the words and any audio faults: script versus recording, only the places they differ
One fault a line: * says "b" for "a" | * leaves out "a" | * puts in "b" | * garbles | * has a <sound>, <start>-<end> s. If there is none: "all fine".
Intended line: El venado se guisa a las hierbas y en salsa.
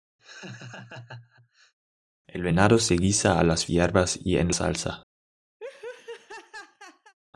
* has a laugh, 0.2-1.7 s
* has a laugh, 5.6-7.1 s